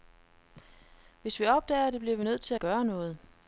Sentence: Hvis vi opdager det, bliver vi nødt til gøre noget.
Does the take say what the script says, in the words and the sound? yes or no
yes